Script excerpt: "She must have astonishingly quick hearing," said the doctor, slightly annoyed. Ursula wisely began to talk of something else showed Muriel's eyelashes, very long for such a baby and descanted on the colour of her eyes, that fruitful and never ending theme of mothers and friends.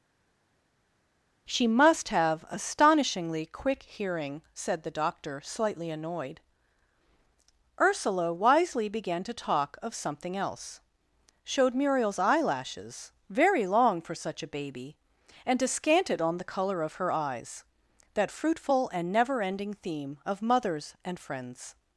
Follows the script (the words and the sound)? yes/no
yes